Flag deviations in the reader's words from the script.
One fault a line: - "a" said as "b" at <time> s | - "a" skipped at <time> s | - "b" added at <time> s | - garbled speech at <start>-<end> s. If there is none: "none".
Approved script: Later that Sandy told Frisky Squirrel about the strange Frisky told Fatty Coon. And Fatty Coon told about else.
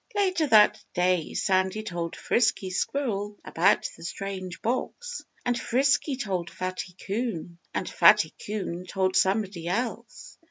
- "day" added at 0.9 s
- "box And" added at 4.6 s
- "about" said as "somebody" at 9.1 s